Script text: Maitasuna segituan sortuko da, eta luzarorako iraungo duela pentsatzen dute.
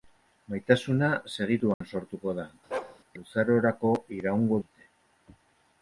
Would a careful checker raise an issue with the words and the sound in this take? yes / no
yes